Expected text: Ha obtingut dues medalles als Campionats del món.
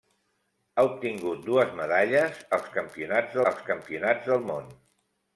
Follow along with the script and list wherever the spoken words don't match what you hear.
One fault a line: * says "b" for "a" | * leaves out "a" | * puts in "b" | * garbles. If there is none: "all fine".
* puts in "als Campionats"